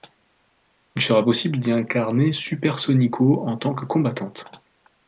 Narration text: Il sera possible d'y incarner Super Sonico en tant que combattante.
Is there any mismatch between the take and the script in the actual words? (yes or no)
no